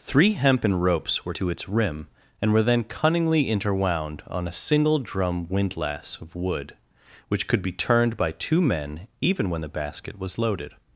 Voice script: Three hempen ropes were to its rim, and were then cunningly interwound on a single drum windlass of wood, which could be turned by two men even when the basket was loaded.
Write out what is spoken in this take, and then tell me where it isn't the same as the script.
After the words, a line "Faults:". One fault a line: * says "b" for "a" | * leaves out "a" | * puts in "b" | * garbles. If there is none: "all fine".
Three hempen ropes were to its rim, and were then cunningly interwound on a single drum windlass of wood, which could be turned by two men even when the basket was loaded.
Faults:
all fine